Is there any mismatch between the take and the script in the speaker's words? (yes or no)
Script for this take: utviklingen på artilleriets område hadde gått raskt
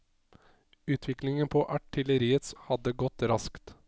yes